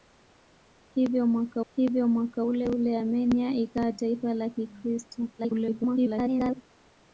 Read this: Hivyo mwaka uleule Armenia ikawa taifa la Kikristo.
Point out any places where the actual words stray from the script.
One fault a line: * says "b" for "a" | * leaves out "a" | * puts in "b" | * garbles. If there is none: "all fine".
* puts in "hivyo mwaka"
* garbles